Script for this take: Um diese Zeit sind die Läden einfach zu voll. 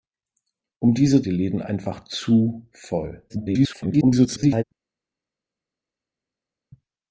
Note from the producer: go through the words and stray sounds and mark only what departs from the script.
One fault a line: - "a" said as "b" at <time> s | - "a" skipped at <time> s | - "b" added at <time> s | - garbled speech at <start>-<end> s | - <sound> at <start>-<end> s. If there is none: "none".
- "Zeit sind" skipped at 1.2 s
- garbled speech at 3.3-4.6 s